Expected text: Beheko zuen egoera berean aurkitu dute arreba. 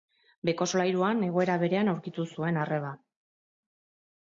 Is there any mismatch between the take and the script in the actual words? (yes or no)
yes